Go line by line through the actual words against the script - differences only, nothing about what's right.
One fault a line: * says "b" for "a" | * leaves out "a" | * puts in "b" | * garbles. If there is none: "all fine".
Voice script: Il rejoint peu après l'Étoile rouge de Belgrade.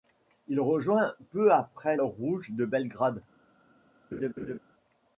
* leaves out "l'Étoile"